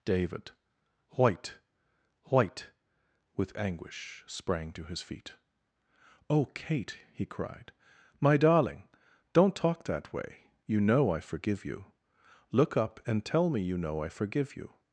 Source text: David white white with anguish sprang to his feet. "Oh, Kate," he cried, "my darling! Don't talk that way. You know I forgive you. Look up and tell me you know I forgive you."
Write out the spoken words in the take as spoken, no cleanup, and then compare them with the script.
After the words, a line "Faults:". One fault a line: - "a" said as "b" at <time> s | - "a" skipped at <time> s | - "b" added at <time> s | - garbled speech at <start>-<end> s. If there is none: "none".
David white white with anguish sprang to his feet. "Oh, Kate," he cried, "my darling! Don't talk that way. You know I forgive you. Look up and tell me you know I forgive you."
Faults:
none